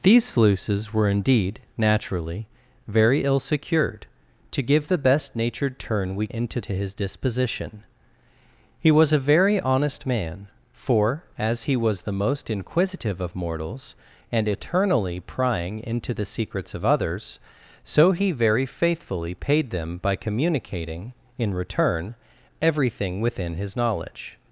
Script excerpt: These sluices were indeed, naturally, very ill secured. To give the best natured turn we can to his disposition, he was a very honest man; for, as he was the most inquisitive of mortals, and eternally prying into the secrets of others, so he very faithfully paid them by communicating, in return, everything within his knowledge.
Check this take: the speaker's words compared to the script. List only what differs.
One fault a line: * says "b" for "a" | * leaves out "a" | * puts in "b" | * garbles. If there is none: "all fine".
* says "into" for "can"